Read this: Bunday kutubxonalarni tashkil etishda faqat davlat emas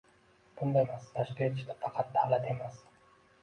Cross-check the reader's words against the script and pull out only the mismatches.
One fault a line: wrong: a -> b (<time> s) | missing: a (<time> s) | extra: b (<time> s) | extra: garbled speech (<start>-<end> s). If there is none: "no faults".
wrong: kutubxonalarni -> emas (0.8 s)